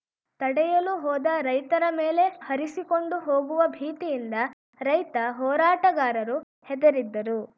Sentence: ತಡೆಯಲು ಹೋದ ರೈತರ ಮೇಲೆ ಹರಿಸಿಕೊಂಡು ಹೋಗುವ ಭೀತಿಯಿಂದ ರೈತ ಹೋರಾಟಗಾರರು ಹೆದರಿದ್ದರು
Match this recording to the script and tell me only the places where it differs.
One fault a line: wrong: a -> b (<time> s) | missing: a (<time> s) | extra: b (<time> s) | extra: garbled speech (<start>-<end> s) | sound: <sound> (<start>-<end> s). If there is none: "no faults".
no faults